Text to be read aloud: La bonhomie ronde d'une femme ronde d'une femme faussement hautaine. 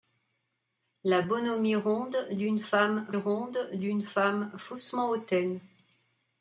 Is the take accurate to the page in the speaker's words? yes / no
yes